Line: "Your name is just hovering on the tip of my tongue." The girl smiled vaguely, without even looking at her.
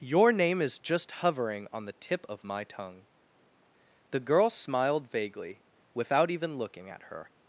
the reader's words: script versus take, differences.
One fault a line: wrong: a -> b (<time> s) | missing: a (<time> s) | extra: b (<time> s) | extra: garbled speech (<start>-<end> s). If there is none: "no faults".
no faults